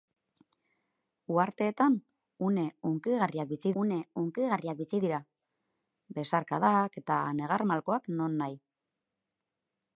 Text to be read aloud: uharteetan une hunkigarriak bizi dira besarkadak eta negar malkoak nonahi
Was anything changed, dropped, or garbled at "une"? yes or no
no